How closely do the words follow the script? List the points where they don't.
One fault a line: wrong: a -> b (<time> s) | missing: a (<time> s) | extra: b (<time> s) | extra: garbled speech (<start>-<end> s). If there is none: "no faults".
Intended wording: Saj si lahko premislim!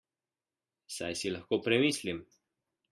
no faults